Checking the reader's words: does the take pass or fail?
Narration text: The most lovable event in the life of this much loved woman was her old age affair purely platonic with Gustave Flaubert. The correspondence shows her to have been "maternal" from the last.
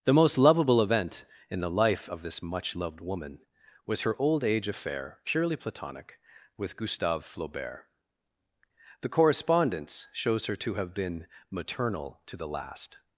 fail